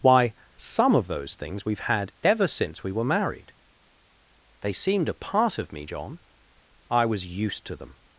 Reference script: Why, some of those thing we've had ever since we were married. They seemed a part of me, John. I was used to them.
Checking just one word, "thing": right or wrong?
wrong